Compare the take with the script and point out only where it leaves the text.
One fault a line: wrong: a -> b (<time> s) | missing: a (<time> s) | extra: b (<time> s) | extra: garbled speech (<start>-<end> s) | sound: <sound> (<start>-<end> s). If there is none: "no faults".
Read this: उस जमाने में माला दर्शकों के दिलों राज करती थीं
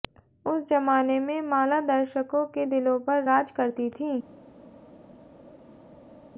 extra: पर (3.1 s)